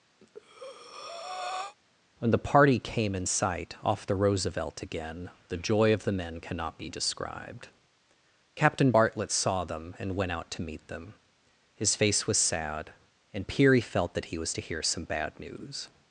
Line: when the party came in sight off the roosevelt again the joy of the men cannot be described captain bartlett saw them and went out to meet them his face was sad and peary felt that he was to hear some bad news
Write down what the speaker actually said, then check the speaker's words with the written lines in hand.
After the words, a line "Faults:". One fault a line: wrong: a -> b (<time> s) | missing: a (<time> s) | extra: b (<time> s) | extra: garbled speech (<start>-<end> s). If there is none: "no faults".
when the party came in sight off the roosevelt again the joy of the men cannot be described captain bartlett saw them and went out to meet them his face was sad and peary felt that he was to hear some bad news
Faults:
no faults